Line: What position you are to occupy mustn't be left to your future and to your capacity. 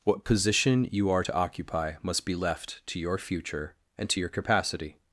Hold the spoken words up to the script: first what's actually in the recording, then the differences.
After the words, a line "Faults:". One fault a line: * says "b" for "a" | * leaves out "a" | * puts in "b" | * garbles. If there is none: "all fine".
What position you are to occupy must be left to your future and to your capacity.
Faults:
* says "must" for "mustn't"